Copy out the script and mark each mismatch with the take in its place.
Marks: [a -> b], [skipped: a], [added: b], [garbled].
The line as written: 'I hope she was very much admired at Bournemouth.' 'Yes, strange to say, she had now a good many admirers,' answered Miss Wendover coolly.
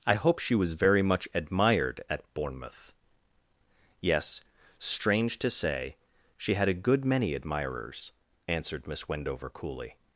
'I hope she was very much admired at Bournemouth.' 'Yes, strange to say, she had [skipped: now] a good many admirers,' answered Miss Wendover coolly.